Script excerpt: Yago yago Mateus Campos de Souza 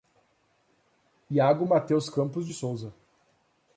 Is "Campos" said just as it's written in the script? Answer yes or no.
yes